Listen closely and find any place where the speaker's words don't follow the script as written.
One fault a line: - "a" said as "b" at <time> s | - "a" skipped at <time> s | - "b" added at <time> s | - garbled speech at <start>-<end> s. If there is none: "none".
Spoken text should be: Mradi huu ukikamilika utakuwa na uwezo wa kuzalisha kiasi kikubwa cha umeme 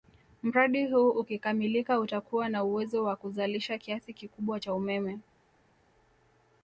none